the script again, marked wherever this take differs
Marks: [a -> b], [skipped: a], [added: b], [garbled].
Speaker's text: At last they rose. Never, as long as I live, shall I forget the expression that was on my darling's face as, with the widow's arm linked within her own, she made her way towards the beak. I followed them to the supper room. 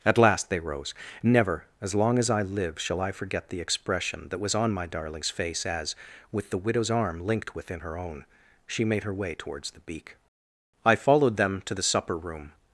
At last they rose. Never, as long as I live, shall I forget the expression that was on my darling's face as, with the widow's arm linked within her own, she made her way towards the beak. I followed them to the supper room.